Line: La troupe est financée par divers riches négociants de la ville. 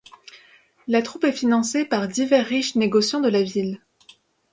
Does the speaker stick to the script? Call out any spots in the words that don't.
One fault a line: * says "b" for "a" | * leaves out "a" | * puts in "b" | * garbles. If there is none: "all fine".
all fine